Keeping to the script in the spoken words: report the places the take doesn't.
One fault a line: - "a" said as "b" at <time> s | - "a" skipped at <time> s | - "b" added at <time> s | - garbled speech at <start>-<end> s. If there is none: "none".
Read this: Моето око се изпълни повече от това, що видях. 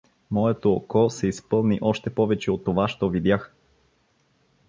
- "още" added at 1.8 s